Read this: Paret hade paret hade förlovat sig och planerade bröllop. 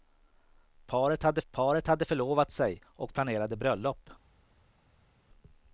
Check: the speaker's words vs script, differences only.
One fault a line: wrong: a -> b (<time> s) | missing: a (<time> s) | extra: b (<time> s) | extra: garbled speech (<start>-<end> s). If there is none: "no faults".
no faults